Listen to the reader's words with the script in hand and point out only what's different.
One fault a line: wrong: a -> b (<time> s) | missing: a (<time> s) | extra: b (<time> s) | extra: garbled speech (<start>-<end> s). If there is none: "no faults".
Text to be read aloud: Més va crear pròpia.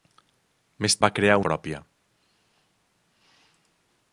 no faults